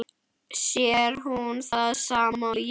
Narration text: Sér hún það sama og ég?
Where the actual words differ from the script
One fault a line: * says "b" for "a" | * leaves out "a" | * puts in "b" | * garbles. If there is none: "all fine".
all fine